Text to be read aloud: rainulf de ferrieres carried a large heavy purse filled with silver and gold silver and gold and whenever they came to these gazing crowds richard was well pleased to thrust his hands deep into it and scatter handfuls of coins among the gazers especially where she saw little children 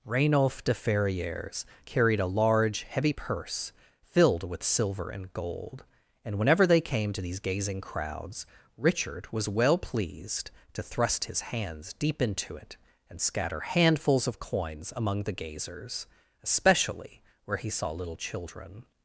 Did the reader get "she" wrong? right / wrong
wrong